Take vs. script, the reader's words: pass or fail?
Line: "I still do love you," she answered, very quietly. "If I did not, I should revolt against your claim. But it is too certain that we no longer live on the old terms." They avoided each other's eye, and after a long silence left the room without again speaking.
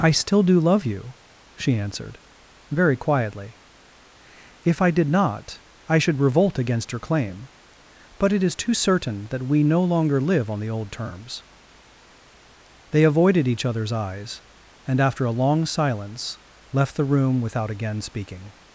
fail